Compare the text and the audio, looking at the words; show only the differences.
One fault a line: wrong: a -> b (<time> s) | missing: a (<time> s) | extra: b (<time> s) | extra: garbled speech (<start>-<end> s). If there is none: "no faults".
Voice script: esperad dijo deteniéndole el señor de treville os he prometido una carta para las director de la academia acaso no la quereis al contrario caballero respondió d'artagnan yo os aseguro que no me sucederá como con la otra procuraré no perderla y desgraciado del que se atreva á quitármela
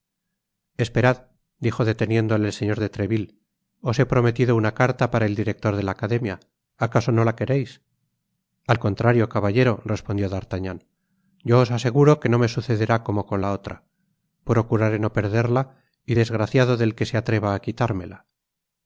wrong: las -> el (5.3 s)